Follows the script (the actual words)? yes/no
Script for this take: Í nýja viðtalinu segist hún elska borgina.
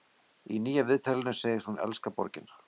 yes